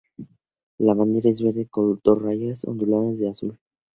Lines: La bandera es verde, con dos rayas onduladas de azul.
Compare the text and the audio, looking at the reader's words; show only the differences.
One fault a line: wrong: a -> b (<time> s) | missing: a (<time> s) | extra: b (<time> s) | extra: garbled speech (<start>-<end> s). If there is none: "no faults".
no faults